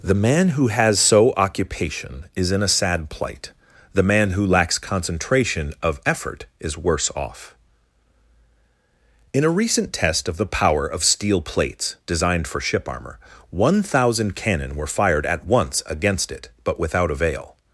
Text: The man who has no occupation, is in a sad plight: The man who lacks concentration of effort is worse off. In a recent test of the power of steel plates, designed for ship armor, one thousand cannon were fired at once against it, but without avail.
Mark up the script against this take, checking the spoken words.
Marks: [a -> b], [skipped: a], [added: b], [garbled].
The man who has [no -> so] occupation, is in a sad plight: The man who lacks concentration of effort is worse off. In a recent test of the power of steel plates, designed for ship armor, one thousand cannon were fired at once against it, but without avail.